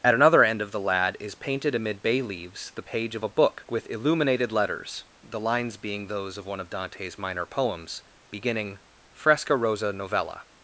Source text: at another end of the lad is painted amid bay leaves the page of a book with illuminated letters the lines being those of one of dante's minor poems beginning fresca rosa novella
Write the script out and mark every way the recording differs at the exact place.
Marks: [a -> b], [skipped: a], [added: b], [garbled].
at another end of the lad is painted amid bay leaves the page of a book with illuminated letters the lines being those of one of dante's minor poems beginning fresca rosa novella